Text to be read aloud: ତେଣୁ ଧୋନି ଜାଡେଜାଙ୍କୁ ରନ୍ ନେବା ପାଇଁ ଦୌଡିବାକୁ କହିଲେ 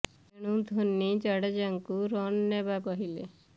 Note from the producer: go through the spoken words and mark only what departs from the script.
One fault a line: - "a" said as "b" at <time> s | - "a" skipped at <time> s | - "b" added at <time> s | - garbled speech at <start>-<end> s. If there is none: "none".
- "ପାଇଁ ଦୌଡିବାକୁ" skipped at 2.8 s